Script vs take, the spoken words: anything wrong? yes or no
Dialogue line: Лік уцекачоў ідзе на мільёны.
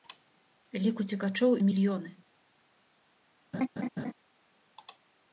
yes